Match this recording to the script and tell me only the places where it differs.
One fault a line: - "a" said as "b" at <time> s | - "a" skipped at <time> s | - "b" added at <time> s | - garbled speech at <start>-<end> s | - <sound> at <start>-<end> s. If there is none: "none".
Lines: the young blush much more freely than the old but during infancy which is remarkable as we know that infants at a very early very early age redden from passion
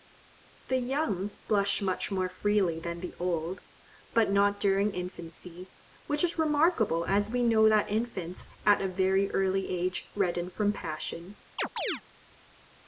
- "not" added at 4.3 s
- "very early" skipped at 9.7 s
- chirp at 11.6-12.0 s